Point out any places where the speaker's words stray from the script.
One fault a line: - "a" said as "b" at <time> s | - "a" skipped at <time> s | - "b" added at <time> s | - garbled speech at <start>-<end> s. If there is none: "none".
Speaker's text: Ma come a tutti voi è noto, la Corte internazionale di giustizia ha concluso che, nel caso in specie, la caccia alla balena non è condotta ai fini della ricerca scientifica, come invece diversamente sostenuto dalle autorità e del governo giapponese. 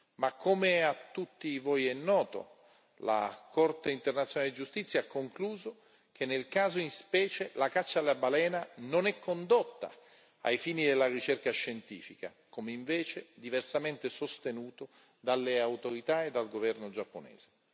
- "del" said as "dal" at 16.3 s